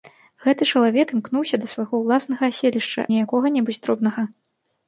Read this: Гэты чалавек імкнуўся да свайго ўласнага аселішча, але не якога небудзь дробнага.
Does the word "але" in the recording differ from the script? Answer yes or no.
yes